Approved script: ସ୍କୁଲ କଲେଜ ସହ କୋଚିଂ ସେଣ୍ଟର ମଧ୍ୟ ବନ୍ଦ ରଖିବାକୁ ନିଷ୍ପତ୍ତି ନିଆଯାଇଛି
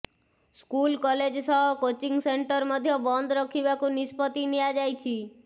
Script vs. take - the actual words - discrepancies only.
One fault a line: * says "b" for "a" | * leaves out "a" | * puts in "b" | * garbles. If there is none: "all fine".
all fine